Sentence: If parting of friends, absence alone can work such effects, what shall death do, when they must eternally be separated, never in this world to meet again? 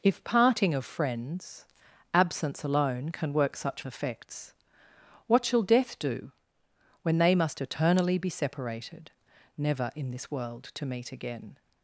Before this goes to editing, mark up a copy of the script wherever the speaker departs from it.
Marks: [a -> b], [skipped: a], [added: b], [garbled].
If parting of friends, absence alone can work such effects, what shall death do, when they must eternally be separated, never in this world to meet again?